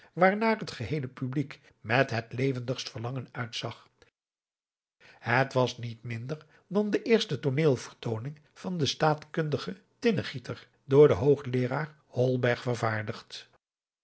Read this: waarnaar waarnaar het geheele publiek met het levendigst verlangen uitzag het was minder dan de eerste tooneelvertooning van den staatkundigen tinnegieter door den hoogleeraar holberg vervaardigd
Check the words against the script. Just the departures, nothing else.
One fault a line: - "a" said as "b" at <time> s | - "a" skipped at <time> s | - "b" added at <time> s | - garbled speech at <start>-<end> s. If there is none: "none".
- "waarnaar" skipped at 0.6 s
- "niet" added at 5.8 s